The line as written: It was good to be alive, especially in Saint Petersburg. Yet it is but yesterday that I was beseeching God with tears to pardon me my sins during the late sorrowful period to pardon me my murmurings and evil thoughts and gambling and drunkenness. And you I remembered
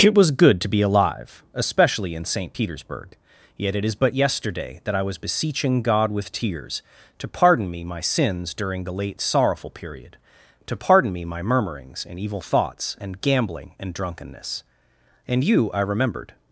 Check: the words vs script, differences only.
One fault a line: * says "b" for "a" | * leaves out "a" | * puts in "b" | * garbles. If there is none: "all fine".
all fine